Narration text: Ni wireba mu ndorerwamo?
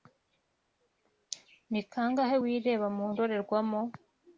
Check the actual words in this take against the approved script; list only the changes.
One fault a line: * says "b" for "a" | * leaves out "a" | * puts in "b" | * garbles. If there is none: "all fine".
* puts in "kangahe"